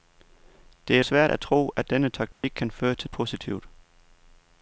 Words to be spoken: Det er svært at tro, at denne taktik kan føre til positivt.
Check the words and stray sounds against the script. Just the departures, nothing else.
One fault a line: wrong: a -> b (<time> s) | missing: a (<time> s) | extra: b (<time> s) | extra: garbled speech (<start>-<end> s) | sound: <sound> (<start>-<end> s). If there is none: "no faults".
sound: dropout (2.3-2.4 s)